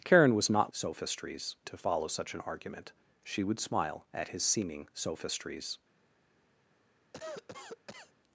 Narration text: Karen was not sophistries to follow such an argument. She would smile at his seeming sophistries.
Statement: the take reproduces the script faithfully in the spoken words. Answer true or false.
true